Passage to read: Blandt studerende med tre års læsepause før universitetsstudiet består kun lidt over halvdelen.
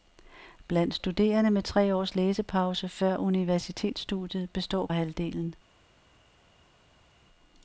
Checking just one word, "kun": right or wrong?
wrong